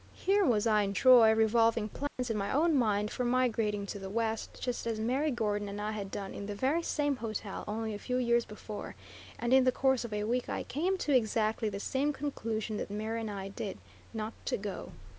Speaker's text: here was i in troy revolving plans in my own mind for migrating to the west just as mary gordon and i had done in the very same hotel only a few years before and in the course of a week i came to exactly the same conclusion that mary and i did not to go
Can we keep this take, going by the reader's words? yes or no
yes